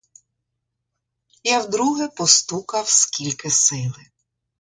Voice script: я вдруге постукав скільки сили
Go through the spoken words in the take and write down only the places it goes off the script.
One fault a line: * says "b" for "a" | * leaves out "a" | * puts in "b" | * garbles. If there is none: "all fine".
all fine